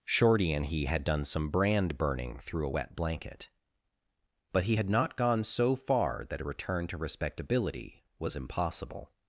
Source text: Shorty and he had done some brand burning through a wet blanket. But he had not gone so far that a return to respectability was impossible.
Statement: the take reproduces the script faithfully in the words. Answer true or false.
true